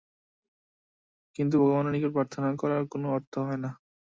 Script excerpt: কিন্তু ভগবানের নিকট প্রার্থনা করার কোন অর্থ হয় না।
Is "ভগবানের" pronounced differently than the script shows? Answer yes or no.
no